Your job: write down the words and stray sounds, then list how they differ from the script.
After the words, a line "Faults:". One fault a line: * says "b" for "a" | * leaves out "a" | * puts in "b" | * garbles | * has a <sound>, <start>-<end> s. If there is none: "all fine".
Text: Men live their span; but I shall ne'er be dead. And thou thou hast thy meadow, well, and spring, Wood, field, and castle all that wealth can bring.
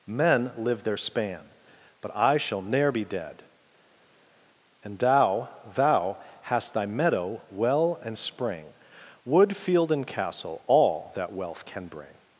Men live their span; but I shall ne'er be dead. And thou thou hast thy meadow, well, and spring, Wood, field, and castle all that wealth can bring.
Faults:
all fine